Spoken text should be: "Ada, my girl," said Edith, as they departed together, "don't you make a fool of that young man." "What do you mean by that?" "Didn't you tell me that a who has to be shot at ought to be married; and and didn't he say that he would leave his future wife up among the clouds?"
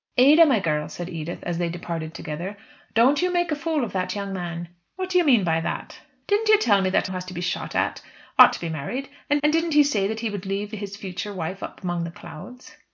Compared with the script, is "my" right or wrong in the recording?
right